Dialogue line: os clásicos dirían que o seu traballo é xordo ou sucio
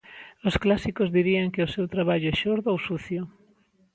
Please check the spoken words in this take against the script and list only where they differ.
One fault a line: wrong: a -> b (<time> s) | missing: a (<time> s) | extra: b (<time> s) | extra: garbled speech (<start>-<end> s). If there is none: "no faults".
no faults